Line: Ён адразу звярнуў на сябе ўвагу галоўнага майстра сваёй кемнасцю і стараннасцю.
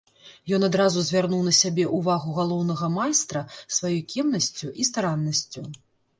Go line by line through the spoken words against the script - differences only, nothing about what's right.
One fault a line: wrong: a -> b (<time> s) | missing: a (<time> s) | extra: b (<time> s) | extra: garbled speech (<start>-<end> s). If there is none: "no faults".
no faults